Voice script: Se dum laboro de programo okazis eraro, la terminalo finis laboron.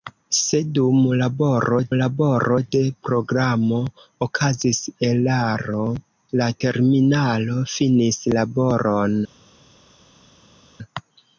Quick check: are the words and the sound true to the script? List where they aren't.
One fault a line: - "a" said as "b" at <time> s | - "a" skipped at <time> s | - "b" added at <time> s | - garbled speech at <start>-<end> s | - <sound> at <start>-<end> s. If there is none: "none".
- "laboro" added at 2.0 s